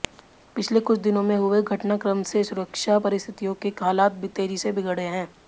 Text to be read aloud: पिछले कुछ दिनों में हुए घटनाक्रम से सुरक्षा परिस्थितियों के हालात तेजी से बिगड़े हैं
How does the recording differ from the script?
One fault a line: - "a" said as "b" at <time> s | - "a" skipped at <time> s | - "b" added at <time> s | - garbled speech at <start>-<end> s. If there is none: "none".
none